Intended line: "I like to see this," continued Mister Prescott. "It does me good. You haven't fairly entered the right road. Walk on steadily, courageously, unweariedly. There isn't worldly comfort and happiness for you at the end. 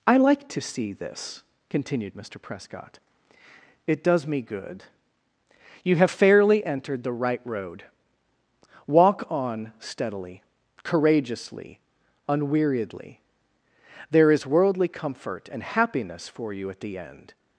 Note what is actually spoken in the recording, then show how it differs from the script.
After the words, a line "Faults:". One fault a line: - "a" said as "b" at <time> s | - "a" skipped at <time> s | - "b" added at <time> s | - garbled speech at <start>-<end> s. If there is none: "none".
"I like to see this," continued Mister Prescott. "It does me good. You have fairly entered the right road. Walk on steadily, courageously, unweariedly. There is worldly comfort and happiness for you at the end.
Faults:
- "haven't" said as "have" at 6.0 s
- "isn't" said as "is" at 14.3 s